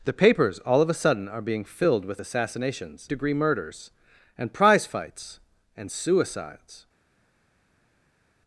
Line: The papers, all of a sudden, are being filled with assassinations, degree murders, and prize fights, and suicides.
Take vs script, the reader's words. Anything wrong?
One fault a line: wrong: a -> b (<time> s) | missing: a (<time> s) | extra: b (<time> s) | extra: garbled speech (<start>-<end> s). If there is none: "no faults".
no faults